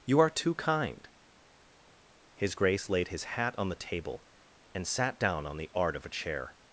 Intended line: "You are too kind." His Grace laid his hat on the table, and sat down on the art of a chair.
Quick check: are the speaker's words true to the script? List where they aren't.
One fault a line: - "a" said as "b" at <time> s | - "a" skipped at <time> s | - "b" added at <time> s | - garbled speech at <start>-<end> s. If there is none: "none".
none